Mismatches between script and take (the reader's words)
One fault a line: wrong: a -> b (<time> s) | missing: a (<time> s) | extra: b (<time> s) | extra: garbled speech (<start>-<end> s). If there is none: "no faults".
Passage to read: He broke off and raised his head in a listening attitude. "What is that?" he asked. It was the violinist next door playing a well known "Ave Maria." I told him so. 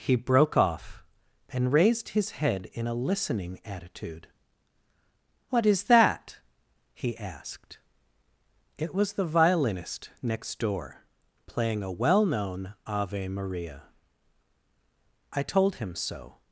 no faults